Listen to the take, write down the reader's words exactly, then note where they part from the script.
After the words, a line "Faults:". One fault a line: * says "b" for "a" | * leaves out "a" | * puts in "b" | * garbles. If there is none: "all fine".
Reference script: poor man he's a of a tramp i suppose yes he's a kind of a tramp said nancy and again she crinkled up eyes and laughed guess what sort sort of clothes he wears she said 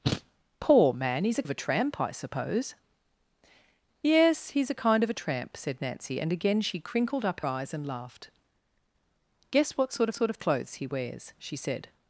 poor man he's a of a tramp i suppose yes he's a kind of a tramp said nancy and again she crinkled up eyes and laughed guess what sort sort of clothes he wears she said
Faults:
all fine